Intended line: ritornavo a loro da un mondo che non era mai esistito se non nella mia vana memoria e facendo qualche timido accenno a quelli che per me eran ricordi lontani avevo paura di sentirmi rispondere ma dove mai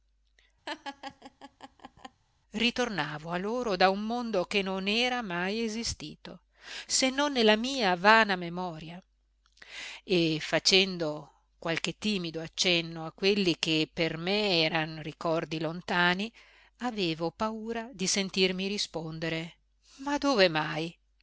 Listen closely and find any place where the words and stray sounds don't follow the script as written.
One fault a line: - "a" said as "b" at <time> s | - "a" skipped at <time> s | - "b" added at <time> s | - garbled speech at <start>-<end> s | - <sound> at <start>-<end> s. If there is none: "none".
- laugh at 0.7-2.2 s